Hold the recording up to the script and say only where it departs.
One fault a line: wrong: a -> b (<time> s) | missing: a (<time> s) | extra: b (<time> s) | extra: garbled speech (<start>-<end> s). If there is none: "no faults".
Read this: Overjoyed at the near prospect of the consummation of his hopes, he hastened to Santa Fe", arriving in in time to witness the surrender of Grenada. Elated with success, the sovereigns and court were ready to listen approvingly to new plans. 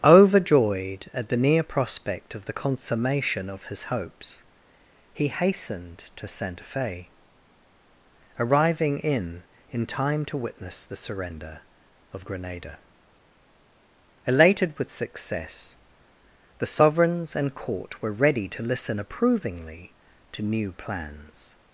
no faults